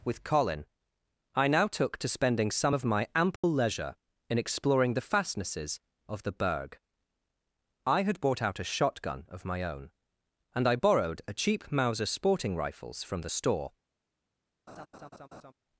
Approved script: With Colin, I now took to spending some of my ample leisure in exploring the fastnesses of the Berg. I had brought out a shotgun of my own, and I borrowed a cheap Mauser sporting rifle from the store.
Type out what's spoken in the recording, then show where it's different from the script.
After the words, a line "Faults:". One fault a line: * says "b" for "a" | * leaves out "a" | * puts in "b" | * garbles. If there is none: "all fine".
With Colin, I now took to spending some of my ample leisure in exploring the fastnesses of the Berg. I had bought out a shotgun of my own, and I borrowed a cheap Mauser sporting rifles from the store.
Faults:
* says "bought" for "brought"
* says "rifles" for "rifle"